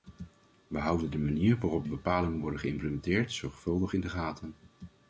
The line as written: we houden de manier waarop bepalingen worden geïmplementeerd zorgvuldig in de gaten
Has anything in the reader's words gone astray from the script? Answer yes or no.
no